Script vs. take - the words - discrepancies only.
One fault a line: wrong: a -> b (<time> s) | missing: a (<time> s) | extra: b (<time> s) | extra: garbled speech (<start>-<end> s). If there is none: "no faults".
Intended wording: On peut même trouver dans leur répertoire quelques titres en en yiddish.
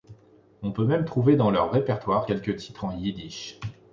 missing: en (3.0 s)